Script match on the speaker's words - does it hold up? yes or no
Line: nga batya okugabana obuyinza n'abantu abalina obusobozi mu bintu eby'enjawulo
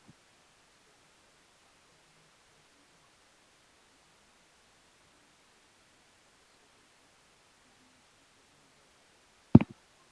yes